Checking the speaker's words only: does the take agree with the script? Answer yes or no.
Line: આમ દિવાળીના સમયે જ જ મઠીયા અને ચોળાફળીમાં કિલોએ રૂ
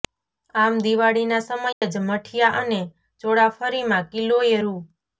no